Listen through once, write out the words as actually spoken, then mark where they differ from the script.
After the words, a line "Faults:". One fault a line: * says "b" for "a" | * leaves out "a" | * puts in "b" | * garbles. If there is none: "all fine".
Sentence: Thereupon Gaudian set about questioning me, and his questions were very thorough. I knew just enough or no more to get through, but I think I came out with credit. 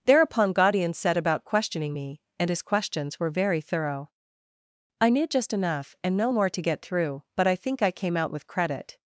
Thereupon Gaudian set about questioning me, and his questions were very thorough. I knew just enough and no more to get through, but I think I came out with credit.
Faults:
* says "and" for "or"